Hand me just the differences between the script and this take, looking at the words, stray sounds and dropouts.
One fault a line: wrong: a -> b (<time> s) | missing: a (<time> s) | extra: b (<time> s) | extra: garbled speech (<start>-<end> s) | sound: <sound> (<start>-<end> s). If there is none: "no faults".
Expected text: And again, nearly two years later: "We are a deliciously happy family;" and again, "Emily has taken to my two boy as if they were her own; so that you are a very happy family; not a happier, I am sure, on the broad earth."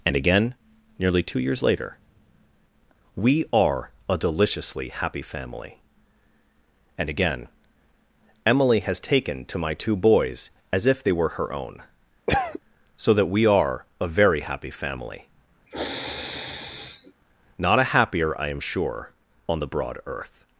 wrong: boy -> boys (9.9 s)
sound: cough (12.3-12.6 s)
wrong: you -> we (13.3 s)
sound: sniff (15.7-17.1 s)